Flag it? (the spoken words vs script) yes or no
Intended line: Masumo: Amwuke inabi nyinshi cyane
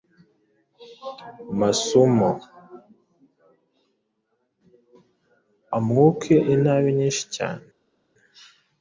no